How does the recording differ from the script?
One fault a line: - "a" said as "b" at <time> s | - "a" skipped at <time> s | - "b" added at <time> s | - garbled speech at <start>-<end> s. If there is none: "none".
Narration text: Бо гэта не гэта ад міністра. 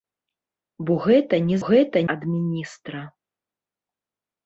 none